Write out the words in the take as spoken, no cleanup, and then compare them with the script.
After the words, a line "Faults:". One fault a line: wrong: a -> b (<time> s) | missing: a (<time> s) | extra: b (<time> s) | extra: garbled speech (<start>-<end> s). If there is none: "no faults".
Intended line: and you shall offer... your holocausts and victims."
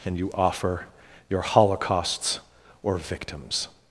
and you offer... your holocausts or victims."
Faults:
missing: shall (0.3 s)
wrong: and -> or (2.8 s)